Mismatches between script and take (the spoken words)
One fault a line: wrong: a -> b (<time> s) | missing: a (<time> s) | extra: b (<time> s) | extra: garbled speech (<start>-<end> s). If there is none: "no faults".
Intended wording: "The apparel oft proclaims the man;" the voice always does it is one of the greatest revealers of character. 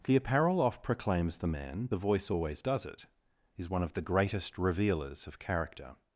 no faults